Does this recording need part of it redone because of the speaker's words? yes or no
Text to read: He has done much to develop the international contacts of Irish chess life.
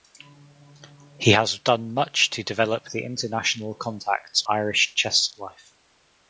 yes